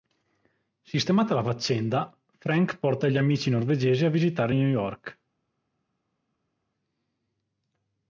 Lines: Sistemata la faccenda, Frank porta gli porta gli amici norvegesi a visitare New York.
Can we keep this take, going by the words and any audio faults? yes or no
no